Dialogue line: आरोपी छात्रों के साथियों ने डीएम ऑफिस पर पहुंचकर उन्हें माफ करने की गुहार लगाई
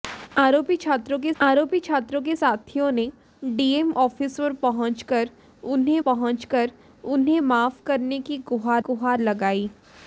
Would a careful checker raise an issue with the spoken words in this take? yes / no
yes